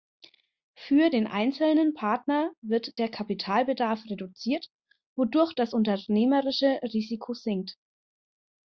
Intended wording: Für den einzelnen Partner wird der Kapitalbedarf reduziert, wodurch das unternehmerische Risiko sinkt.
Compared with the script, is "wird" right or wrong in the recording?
right